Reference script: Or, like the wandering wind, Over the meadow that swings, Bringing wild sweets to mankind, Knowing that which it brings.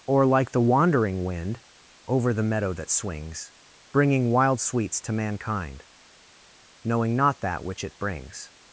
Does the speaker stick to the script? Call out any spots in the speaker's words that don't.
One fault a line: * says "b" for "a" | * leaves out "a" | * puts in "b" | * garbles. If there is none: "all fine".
* puts in "not"